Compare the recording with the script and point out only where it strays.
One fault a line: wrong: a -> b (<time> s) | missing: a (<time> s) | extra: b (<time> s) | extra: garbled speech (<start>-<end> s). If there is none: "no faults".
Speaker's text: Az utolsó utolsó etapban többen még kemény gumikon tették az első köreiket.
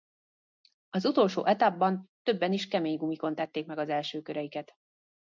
missing: utolsó (1.4 s)
wrong: még -> is (2.5 s)
extra: meg (3.6 s)